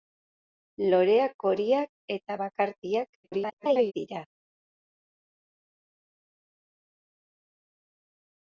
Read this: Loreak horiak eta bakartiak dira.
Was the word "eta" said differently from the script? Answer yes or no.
no